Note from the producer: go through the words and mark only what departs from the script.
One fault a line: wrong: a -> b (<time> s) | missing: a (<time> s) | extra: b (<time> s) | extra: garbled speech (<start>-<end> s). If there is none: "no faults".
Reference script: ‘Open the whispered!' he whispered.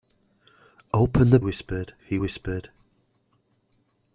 no faults